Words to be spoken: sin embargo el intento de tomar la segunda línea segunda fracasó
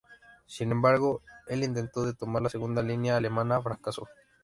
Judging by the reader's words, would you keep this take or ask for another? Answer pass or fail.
fail